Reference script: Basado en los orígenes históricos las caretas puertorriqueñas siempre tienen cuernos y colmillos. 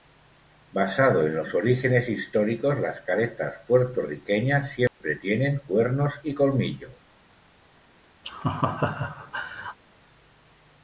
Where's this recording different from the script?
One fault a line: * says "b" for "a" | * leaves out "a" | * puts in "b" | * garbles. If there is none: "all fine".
all fine